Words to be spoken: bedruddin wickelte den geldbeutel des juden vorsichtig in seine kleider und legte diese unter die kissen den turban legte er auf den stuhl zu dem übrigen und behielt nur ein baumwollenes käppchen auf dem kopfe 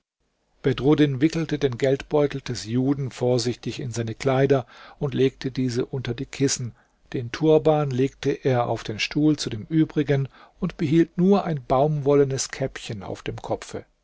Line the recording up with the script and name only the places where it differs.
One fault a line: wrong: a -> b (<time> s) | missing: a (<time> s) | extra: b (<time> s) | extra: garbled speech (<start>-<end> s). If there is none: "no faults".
no faults